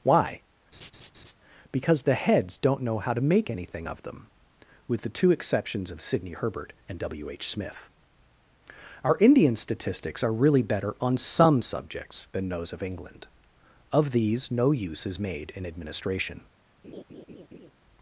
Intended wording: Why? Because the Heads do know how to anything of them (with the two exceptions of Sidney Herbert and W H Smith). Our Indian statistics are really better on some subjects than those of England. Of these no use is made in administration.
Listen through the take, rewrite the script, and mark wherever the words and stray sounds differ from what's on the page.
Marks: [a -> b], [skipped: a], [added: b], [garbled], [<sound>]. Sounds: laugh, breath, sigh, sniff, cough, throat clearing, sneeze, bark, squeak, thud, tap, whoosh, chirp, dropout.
Why? [laugh] Because the Heads [do -> don't] know how to [added: make] anything of them (with the two exceptions of Sidney Herbert and W H Smith). Our Indian statistics are really better on some subjects than those of England. Of these no use is made in administration. [laugh]